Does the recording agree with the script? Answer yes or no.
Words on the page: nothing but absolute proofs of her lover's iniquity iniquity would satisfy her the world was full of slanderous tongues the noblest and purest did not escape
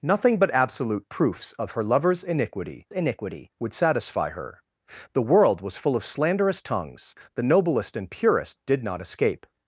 yes